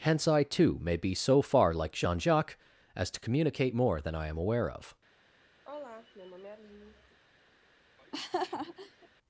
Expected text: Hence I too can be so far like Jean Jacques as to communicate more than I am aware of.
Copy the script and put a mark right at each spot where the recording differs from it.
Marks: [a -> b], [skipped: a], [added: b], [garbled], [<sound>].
Hence I too [can -> may] be so far like Jean Jacques as to communicate more than I am aware of. [sigh] [laugh]